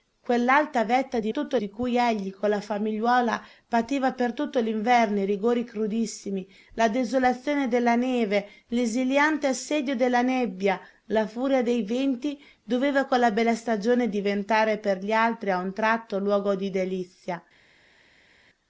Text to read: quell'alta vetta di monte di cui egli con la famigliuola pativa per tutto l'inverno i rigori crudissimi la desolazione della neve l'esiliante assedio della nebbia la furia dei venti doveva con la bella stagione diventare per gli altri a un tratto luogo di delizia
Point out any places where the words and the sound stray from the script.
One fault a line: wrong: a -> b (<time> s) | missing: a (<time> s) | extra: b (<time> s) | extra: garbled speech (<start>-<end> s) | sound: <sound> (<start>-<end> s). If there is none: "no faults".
wrong: monte -> tutto (1.3 s)